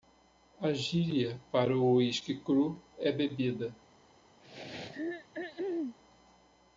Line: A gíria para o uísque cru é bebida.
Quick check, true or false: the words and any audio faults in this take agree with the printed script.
false